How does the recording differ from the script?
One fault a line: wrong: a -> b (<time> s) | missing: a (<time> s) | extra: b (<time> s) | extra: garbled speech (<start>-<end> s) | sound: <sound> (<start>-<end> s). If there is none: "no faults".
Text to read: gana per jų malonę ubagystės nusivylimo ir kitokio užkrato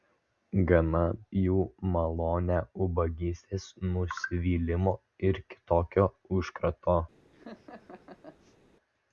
missing: per (1.0 s)
sound: laugh (7.3-8.6 s)